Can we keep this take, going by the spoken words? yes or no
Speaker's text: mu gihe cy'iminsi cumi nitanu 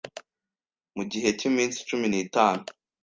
yes